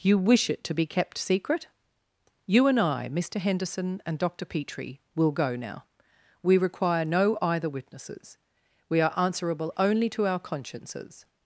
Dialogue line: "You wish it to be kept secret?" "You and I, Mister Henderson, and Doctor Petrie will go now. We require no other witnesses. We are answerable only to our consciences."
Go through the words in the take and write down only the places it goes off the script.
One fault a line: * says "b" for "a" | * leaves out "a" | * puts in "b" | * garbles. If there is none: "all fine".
* says "either" for "other"